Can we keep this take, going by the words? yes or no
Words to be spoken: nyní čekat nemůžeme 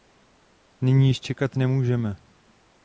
no